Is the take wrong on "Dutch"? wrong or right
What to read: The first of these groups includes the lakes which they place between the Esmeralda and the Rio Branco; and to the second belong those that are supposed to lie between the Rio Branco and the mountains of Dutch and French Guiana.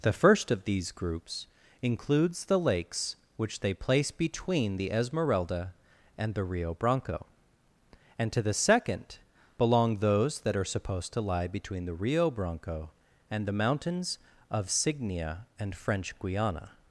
wrong